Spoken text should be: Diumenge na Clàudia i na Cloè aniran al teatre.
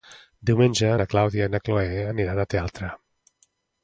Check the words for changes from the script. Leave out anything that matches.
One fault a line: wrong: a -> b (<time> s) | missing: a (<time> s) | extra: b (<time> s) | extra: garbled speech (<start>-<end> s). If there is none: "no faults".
no faults